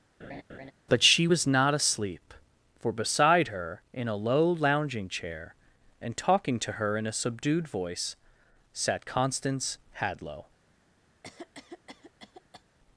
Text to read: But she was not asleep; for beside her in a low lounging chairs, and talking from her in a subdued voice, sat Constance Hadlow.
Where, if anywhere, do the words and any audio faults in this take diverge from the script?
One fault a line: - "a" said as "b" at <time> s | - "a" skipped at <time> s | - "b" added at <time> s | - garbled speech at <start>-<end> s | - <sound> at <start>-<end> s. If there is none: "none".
- laugh at 0.2-0.7 s
- "chairs" said as "chair" at 5.1 s
- "from" said as "to" at 6.6 s
- cough at 11.2-12.6 s